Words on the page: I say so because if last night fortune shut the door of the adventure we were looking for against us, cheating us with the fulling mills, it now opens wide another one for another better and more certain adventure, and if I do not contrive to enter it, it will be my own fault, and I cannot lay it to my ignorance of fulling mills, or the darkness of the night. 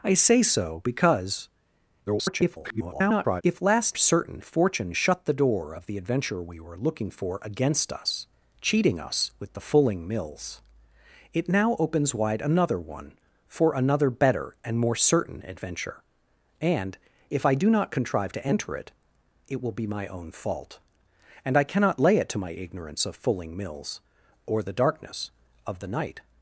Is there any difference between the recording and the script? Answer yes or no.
yes